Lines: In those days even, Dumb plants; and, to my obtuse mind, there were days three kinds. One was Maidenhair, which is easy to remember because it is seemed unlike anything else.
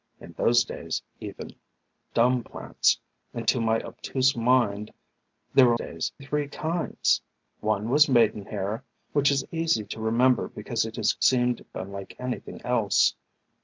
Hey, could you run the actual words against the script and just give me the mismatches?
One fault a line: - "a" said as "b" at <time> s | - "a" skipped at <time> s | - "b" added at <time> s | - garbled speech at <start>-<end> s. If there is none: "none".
none